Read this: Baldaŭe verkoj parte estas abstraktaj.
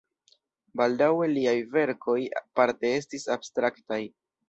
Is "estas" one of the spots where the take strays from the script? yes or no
yes